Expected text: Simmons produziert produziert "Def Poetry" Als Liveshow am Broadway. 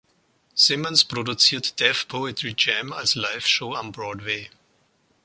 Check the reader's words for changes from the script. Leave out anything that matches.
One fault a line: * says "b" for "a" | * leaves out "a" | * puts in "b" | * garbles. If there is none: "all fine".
* leaves out "produziert"
* puts in "Jam"